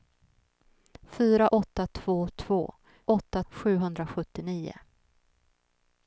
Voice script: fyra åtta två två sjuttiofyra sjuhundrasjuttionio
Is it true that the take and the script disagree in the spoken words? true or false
true